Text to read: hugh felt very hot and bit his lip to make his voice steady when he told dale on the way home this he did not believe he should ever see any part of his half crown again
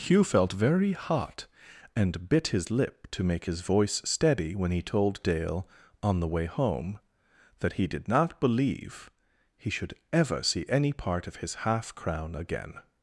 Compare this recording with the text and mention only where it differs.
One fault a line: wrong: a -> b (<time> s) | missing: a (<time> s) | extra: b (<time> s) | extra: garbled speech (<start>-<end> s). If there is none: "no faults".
wrong: this -> that (7.6 s)